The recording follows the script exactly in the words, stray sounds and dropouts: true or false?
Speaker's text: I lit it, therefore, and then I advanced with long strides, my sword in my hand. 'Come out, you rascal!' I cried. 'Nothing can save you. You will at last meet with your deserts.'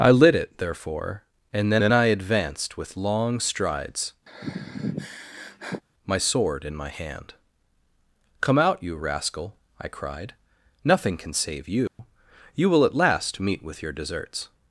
false